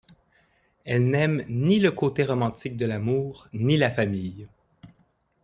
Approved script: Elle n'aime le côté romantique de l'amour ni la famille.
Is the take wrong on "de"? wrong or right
right